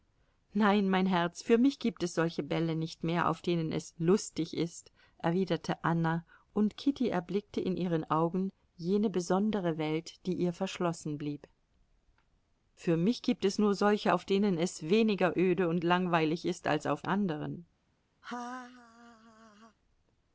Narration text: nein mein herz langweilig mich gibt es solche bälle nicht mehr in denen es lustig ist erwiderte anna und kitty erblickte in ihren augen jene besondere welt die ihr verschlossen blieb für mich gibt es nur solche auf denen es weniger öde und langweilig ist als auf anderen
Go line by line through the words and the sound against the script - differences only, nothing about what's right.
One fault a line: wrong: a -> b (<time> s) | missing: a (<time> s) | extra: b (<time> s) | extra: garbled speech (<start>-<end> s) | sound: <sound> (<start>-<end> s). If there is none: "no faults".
wrong: langweilig -> für (1.4 s)
wrong: in -> auf (3.3 s)
sound: laugh (18.2-19.8 s)